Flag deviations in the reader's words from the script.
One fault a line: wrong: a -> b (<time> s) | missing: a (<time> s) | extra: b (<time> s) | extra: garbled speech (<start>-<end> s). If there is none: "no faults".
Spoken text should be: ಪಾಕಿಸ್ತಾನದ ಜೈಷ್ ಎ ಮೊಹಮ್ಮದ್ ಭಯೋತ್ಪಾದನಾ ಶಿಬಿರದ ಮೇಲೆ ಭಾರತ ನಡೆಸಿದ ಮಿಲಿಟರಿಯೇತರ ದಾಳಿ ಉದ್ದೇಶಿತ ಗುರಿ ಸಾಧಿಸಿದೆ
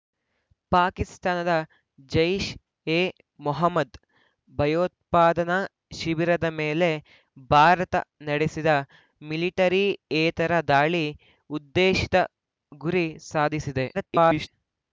extra: garbled speech (13.9-14.5 s)